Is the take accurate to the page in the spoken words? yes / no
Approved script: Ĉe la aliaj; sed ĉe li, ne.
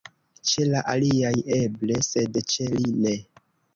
no